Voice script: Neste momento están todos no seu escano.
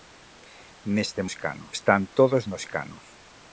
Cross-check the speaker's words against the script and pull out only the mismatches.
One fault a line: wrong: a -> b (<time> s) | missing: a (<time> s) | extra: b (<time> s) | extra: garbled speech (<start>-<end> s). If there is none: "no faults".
wrong: momento -> escano (1.3 s)
missing: seu (2.6 s)